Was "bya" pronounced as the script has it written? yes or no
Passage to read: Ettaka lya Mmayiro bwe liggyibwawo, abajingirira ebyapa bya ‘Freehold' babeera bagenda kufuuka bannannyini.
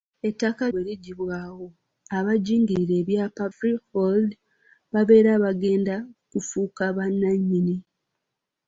no